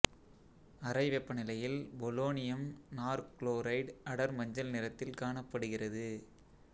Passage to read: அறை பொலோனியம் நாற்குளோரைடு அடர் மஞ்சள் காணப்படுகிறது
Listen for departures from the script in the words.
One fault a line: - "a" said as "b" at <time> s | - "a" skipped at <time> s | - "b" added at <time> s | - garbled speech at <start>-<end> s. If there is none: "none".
- "வெப்பநிலையில்" added at 1.1 s
- "நிறத்தில்" added at 4.7 s